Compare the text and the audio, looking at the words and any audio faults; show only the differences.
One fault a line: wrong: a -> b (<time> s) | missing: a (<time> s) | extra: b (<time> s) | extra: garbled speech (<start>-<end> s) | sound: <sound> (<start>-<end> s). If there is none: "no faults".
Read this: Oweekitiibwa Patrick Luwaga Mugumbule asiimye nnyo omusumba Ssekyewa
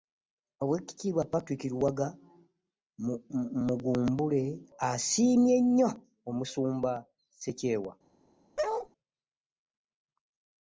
sound: bark (8.6-8.9 s)